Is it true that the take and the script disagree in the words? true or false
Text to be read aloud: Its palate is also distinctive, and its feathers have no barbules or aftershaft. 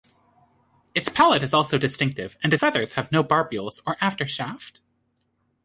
true